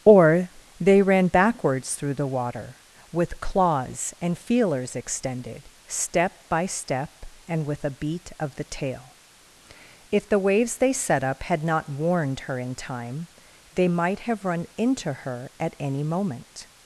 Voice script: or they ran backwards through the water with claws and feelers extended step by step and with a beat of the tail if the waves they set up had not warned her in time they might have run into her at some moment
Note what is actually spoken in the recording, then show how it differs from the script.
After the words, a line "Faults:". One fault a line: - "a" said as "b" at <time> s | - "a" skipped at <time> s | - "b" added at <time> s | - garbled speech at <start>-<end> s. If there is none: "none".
or they ran backwards through the water with claws and feelers extended step by step and with a beat of the tail if the waves they set up had not warned her in time they might have run into her at any moment
Faults:
- "some" said as "any" at 15.8 s